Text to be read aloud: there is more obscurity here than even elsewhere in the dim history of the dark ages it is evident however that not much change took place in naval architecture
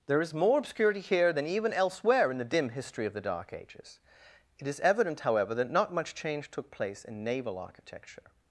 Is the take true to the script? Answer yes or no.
yes